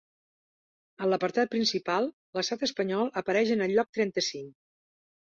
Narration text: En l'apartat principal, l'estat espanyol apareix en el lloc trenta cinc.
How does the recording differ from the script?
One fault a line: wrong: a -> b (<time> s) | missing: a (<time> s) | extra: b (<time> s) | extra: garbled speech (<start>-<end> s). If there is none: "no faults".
no faults